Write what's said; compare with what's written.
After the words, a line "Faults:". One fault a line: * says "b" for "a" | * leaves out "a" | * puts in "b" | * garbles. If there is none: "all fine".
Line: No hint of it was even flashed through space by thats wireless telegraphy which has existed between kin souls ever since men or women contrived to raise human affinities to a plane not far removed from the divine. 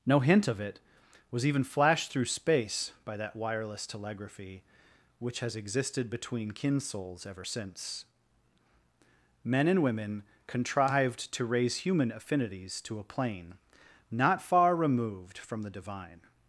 No hint of it was even flashed through space by that wireless telegraphy which has existed between kin souls ever since men and women contrived to raise human affinities to a plane not far removed from the divine.
Faults:
* says "that" for "thats"
* says "and" for "or"